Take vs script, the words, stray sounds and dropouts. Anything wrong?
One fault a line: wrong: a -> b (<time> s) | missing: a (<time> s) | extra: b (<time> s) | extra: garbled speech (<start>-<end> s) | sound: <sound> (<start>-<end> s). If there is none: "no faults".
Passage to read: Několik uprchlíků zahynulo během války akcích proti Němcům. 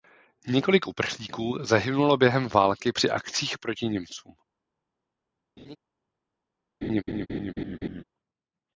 extra: při (2.9 s)
sound: laugh (5.6-5.8 s)
sound: laugh (6.8-8.0 s)